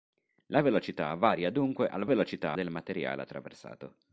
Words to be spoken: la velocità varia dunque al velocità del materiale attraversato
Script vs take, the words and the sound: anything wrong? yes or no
no